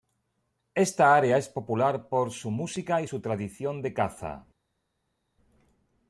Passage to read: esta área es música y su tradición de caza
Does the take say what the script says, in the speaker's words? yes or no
no